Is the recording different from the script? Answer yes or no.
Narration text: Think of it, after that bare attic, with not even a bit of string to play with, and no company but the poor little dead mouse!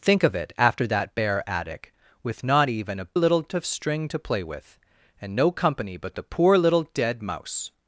yes